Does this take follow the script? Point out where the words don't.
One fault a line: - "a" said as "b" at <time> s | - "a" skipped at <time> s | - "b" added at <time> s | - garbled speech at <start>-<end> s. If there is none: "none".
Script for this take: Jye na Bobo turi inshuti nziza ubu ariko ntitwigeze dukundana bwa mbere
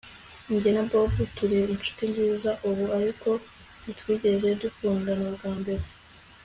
none